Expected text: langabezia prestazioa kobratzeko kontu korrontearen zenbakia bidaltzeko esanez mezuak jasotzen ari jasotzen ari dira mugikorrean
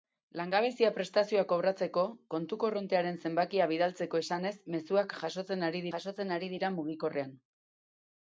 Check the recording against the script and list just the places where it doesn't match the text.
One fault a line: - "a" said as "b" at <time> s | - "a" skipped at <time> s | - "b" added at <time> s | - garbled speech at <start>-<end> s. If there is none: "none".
none